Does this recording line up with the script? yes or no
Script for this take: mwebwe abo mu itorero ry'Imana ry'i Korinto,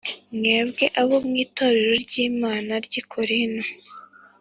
yes